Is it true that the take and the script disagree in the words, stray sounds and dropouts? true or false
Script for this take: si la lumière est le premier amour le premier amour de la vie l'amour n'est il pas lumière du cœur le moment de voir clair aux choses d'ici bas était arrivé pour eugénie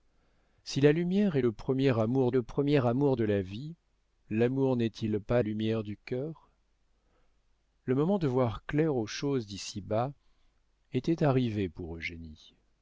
false